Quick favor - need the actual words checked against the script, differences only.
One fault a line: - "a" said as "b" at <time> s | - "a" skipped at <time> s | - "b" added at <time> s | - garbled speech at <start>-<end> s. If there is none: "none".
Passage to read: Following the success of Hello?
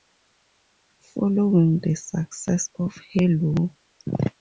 none